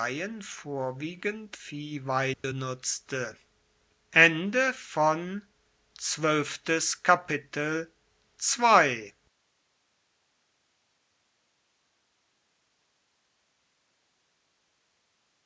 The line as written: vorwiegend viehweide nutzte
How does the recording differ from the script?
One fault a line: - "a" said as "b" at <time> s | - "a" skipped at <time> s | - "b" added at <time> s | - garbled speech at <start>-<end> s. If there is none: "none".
none